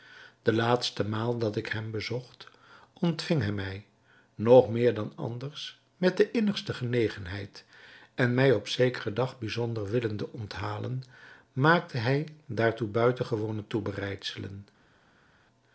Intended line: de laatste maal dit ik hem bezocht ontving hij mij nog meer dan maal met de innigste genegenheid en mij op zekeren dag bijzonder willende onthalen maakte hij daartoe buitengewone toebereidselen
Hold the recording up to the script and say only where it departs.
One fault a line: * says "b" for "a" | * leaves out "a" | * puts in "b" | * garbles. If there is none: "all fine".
* says "dat" for "dit"
* says "anders" for "maal"